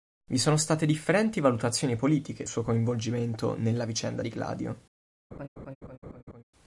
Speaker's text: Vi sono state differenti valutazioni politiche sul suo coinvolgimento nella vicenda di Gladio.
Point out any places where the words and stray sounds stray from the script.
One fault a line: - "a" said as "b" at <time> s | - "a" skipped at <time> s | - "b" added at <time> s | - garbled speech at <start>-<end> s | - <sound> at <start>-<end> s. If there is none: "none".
- "sul" skipped at 2.5 s
- laugh at 5.3-6.4 s